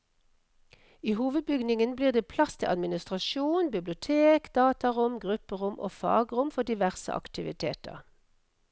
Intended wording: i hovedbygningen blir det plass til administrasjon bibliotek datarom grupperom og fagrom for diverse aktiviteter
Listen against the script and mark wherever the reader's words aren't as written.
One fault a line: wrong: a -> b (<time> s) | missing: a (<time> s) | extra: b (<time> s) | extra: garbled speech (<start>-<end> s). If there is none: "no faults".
no faults